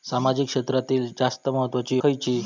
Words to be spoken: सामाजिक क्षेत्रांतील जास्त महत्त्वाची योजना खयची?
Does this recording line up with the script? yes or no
no